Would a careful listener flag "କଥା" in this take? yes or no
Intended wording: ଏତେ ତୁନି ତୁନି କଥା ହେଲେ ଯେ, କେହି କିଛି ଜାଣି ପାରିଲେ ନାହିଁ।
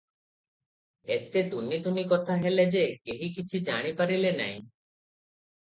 no